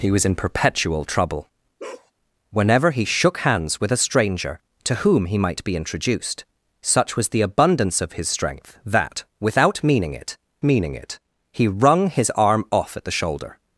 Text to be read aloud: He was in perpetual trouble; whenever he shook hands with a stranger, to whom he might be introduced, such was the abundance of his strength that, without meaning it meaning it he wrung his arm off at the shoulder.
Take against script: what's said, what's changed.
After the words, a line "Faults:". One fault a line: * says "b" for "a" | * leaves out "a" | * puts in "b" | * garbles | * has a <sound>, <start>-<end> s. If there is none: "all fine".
He was in perpetual trouble; whenever he shook hands with a stranger, to whom he might be introduced, such was the abundance of his strength that, without meaning it meaning it he wrung his arm off at the shoulder.
Faults:
* has a bark, 1.8-2.1 s